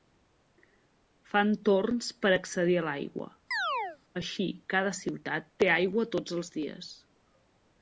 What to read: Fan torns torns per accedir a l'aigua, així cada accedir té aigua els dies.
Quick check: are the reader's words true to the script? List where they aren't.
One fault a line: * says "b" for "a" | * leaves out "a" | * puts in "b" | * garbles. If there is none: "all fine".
* leaves out "torns"
* says "ciutat" for "accedir"
* puts in "tots"